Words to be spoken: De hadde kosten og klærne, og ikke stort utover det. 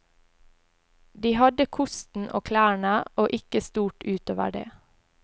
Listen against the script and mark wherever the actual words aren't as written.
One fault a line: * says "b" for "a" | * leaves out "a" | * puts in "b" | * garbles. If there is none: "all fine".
all fine